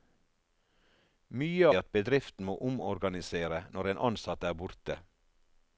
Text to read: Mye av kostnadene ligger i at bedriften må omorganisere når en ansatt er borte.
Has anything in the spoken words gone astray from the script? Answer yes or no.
yes